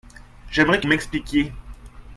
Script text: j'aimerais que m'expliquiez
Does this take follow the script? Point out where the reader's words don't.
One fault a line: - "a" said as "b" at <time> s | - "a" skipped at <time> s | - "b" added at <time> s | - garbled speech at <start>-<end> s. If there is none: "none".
none